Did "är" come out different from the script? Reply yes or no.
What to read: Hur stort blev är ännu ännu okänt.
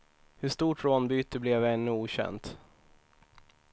no